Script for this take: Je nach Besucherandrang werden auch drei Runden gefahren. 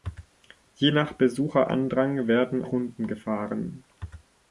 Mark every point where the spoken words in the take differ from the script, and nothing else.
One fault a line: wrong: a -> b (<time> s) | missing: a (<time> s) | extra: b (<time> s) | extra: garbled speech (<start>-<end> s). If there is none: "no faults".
missing: auch drei (2.6 s)